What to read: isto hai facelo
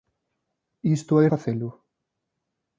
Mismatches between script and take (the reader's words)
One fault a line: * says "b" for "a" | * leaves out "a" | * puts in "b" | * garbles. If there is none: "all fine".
all fine